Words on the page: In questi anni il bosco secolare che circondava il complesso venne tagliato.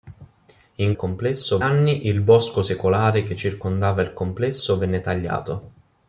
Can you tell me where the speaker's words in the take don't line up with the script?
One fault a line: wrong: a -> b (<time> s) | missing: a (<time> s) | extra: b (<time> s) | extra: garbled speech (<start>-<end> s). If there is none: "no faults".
wrong: questi -> complesso (1.0 s)